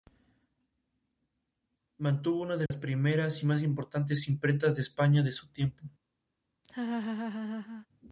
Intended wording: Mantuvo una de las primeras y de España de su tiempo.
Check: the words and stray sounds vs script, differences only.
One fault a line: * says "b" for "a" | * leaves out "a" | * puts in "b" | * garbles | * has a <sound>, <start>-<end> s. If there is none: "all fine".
* has a dropout, 2.7-2.7 s
* puts in "más importantes imprentas"
* has a laugh, 6.6-7.9 s